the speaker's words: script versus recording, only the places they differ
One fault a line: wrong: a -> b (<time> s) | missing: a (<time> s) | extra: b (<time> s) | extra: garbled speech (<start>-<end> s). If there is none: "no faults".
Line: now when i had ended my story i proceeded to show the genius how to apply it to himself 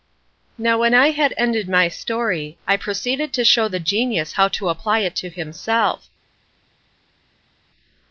no faults